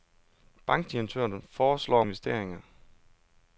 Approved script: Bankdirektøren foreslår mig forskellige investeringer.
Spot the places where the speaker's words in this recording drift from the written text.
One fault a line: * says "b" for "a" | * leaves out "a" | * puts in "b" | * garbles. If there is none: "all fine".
* leaves out "mig forskellige"